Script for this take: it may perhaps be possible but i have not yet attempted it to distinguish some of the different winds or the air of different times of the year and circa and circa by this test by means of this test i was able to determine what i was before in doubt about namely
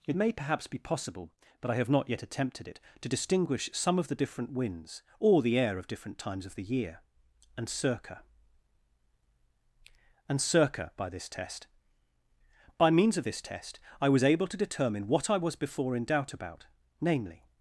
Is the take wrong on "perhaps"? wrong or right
right